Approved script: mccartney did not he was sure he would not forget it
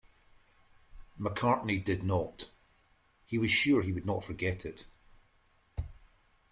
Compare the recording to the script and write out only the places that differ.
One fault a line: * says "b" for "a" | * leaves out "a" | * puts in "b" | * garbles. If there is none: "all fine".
all fine